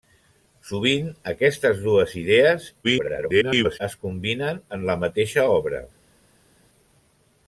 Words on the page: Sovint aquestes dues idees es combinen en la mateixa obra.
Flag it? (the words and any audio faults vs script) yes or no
yes